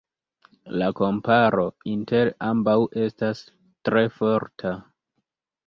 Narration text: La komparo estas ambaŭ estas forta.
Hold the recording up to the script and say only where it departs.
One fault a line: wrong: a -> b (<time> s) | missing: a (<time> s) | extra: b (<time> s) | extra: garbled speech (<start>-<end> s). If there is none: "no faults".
wrong: estas -> inter (1.9 s)
extra: tre (3.9 s)